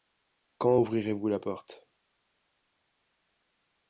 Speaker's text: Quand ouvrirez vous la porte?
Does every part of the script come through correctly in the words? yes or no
yes